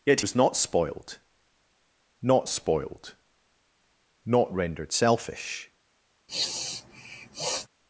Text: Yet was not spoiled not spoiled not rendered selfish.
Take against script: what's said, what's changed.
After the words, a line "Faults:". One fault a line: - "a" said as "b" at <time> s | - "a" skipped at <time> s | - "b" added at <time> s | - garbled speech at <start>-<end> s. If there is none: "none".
Yet was not spoiled not spoiled not rendered selfish.
Faults:
none